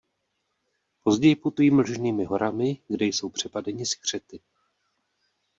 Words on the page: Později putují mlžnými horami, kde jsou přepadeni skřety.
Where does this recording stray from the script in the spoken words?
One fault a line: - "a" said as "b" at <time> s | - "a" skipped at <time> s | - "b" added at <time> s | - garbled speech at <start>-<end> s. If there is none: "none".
none